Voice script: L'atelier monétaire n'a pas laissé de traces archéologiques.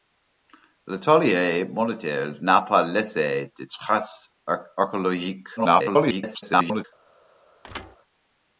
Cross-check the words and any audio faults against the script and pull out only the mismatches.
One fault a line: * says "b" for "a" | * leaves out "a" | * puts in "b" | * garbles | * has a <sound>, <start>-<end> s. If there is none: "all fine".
* garbles
* has a thud, 7.6-8.0 s